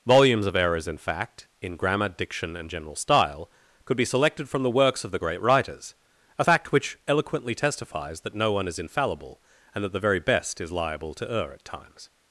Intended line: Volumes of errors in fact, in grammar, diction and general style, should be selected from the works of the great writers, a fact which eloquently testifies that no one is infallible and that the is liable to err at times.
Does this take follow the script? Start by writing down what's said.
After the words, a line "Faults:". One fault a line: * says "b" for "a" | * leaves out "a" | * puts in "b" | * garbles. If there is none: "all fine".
Volumes of errors in fact, in grammar, diction and general style, could be selected from the works of the great writers, a fact which eloquently testifies that no one is infallible and that the very best is liable to err at times.
Faults:
* says "could" for "should"
* puts in "very best"